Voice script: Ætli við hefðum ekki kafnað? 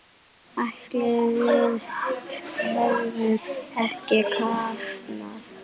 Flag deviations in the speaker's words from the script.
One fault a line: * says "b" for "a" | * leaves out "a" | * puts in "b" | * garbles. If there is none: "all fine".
all fine